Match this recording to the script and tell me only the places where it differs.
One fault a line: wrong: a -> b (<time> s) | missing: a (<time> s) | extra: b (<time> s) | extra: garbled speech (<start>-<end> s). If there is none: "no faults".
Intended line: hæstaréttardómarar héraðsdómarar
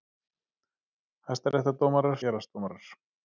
no faults